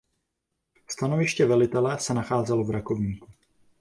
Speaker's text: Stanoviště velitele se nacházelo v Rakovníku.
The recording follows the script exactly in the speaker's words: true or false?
true